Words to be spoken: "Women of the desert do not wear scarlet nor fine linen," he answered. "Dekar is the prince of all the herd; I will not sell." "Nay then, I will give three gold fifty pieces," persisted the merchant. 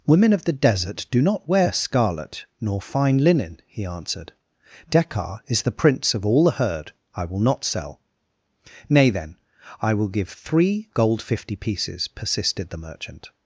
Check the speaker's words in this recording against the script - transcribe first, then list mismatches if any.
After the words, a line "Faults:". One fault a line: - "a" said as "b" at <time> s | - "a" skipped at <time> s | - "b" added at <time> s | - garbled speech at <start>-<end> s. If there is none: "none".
"Women of the desert do not wear scarlet nor fine linen," he answered. "Dekar is the prince of all the herd; I will not sell." "Nay then, I will give three gold fifty pieces," persisted the merchant.
Faults:
none